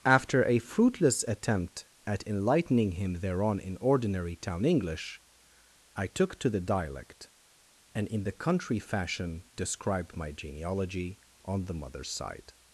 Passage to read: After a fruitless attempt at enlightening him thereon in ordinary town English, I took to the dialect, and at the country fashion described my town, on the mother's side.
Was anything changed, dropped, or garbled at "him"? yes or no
no